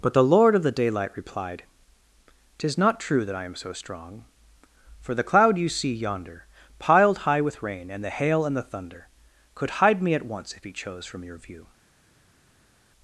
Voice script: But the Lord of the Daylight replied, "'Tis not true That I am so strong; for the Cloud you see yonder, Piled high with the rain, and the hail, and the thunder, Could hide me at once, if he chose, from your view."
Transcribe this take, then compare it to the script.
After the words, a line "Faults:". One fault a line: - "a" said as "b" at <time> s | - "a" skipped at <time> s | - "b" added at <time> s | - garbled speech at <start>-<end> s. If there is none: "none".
But the Lord of the Daylight replied, "'Tis not true That I am so strong; for the Cloud you see yonder, Piled high with rain, and the hail, and the thunder, Could hide me at once, if he chose, from your view."
Faults:
- "the" skipped at 7.6 s